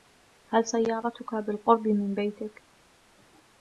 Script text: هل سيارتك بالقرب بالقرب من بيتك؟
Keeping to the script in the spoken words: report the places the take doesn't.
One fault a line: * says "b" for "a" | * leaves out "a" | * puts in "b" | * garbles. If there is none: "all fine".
* leaves out "بالقرب"